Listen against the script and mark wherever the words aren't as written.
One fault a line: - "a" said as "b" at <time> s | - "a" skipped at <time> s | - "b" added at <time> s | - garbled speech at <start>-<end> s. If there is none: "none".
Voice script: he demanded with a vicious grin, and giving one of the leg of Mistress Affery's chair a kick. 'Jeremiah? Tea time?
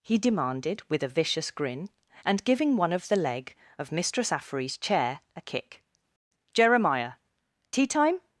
none